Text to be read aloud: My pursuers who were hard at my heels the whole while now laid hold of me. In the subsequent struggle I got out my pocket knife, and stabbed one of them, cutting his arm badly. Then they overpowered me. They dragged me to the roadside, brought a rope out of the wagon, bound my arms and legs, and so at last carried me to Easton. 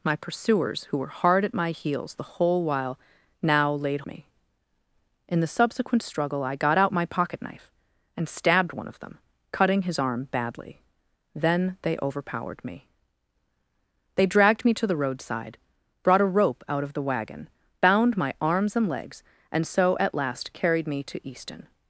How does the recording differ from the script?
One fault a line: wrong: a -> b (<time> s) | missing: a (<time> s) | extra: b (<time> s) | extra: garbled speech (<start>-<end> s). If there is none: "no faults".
missing: hold of (4.0 s)